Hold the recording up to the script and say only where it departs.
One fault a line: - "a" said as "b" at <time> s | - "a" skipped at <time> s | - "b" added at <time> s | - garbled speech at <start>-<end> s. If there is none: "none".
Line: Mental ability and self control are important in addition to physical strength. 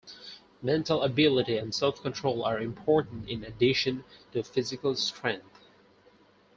none